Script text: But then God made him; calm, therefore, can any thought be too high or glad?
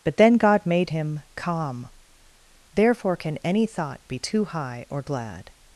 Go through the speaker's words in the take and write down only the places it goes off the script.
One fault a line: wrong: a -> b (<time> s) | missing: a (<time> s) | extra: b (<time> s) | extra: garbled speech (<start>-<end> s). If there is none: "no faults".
no faults